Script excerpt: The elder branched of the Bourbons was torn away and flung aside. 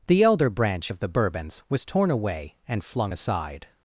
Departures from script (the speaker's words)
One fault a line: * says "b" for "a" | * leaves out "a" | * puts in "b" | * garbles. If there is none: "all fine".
* says "branch" for "branched"